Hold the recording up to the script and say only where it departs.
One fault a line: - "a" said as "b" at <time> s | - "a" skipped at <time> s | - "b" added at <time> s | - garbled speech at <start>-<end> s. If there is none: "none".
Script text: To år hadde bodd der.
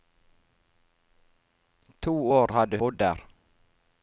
none